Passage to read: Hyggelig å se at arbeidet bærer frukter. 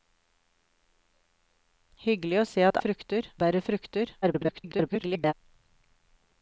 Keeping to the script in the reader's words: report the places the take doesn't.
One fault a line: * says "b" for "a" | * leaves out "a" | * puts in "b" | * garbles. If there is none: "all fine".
* says "frukter" for "arbeidet"
* garbles